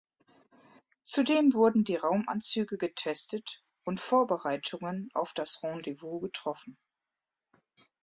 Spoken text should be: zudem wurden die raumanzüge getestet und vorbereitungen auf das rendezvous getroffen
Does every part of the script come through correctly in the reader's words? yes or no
yes